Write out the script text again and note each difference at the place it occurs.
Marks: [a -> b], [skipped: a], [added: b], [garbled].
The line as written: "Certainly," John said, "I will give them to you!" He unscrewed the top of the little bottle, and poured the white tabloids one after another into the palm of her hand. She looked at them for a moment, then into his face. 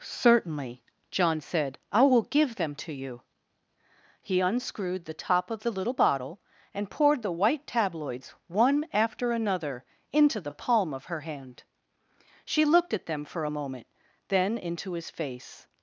"Certainly," John said, "I will give them to you!" He unscrewed the top of the little bottle, and poured the white tabloids one after another into the palm of her hand. She looked at them for a moment, then into his face.